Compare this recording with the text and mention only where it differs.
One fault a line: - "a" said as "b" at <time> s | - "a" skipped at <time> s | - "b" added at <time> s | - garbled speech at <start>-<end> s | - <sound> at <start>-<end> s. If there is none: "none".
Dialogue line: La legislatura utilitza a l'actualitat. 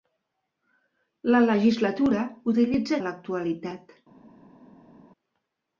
none